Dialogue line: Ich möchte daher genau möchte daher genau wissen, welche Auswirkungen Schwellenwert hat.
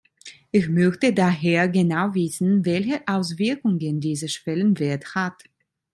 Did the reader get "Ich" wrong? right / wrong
right